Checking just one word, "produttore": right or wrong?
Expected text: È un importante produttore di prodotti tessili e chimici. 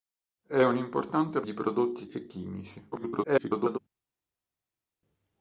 wrong